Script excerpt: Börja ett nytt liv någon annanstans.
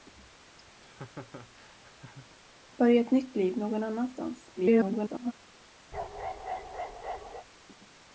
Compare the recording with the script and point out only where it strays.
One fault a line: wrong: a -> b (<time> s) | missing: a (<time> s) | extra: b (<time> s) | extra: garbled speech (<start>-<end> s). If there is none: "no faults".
extra: garbled speech (4.6-5.3 s)